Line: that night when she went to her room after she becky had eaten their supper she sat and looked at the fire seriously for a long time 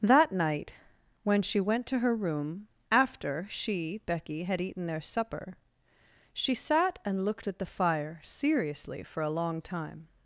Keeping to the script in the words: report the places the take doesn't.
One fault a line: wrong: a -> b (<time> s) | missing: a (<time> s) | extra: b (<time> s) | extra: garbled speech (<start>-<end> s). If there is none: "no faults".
no faults